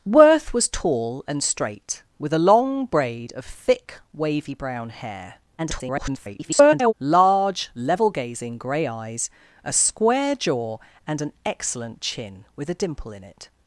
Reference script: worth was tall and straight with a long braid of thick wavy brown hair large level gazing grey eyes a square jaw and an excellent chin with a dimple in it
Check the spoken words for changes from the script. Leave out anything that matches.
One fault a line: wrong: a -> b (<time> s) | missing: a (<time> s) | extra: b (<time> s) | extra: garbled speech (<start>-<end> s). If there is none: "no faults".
extra: garbled speech (5.6-6.9 s)